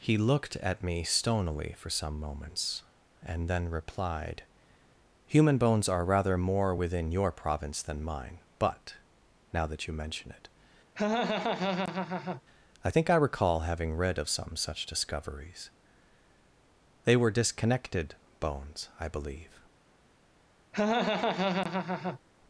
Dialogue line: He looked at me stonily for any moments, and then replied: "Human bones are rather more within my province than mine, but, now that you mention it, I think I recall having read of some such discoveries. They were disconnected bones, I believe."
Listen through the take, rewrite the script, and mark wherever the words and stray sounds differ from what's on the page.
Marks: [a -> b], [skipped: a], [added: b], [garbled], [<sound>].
He looked at me stonily for [any -> some] moments, and then replied: "Human bones are rather more within [my -> your] province than mine, but, now that you mention it, [laugh] I think I recall having read of some such discoveries. They were disconnected bones, I believe." [laugh]